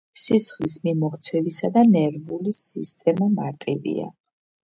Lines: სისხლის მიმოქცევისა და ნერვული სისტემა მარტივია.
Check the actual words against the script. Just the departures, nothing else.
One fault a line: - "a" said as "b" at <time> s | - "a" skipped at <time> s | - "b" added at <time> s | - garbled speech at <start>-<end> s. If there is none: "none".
none